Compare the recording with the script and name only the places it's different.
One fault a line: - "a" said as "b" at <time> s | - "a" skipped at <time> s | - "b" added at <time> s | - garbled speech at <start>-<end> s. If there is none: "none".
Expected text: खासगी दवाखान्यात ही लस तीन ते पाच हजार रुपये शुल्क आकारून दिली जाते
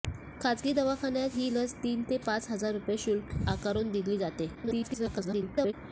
- garbled speech at 4.6-5.7 s